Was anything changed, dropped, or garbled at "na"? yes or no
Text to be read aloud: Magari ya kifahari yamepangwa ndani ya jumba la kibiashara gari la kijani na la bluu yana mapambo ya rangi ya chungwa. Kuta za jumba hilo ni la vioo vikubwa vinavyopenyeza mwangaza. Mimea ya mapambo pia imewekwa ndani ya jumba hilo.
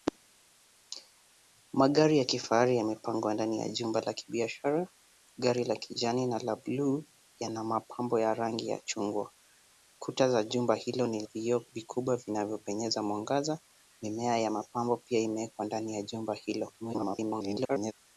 no